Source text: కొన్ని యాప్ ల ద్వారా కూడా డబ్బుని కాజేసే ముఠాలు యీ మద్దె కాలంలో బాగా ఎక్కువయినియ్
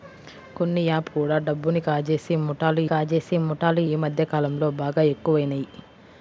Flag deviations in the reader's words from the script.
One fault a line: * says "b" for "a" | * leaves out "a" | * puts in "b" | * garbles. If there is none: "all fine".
* says "కూడా డబ్బుని కాజేసే ముఠాలు" for "ల ద్వారా కూడా డబ్బుని"